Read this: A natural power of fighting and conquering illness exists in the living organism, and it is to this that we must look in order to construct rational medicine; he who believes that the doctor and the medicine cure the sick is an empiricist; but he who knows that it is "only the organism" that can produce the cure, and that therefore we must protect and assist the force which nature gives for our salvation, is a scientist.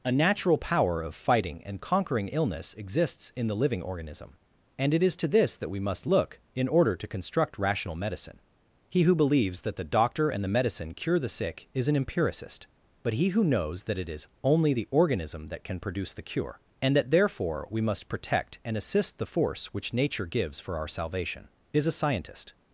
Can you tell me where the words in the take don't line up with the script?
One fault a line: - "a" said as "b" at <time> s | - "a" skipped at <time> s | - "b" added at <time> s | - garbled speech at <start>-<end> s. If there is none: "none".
none